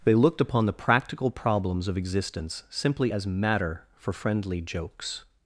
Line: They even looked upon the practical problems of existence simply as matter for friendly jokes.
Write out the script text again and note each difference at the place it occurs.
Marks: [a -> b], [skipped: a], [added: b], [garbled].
They [skipped: even] looked upon the practical problems of existence simply as matter for friendly jokes.